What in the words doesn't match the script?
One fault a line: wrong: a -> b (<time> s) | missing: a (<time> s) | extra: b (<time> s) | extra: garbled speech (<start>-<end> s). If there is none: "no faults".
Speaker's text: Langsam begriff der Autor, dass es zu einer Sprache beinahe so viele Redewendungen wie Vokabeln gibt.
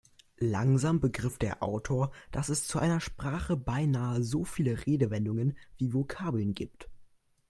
no faults